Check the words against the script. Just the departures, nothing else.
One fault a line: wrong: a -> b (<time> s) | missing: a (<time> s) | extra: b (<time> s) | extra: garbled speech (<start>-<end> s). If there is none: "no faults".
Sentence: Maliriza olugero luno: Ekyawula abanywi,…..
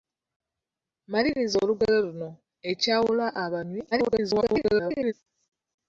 extra: garbled speech (3.9-5.1 s)